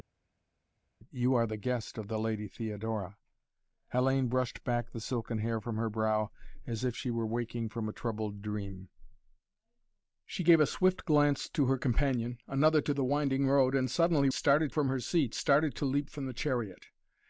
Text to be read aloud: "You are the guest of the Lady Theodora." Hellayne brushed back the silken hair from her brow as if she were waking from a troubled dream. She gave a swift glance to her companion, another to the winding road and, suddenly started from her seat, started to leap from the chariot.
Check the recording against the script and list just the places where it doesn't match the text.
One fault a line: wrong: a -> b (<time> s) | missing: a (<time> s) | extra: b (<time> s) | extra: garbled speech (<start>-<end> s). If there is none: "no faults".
no faults